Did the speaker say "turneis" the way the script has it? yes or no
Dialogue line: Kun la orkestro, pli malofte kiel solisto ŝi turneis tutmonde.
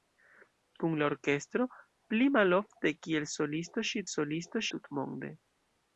no